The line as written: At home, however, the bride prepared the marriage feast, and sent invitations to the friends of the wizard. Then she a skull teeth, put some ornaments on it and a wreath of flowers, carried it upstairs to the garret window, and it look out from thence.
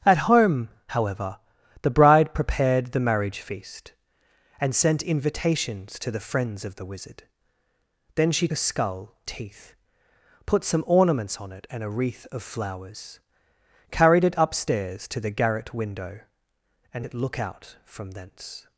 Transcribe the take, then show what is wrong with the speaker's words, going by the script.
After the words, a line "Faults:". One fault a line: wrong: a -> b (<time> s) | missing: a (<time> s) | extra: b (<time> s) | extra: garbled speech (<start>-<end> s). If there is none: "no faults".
At home, however, the bride prepared the marriage feast, and sent invitations to the friends of the wizard. Then she a skull teeth, put some ornaments on it and a wreath of flowers, carried it upstairs to the garret window, and it look out from thence.
Faults:
no faults